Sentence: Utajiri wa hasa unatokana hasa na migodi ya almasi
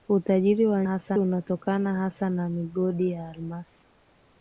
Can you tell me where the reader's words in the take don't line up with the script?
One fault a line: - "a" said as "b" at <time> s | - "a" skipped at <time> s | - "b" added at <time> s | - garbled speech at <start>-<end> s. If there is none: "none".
none